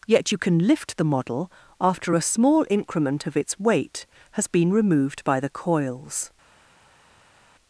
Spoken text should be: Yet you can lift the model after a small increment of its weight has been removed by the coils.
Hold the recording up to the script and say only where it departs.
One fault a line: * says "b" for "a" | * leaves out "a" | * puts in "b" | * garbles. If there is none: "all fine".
all fine